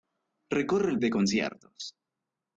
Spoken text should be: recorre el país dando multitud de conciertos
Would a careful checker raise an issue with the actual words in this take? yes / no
yes